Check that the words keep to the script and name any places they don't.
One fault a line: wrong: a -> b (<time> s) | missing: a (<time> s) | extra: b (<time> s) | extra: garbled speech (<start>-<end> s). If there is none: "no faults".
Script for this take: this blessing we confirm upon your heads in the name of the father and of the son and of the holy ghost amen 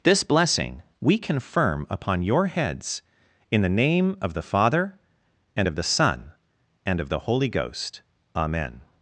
no faults